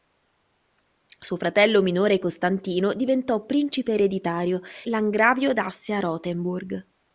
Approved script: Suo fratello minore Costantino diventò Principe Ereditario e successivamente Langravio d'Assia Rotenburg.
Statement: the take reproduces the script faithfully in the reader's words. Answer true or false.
false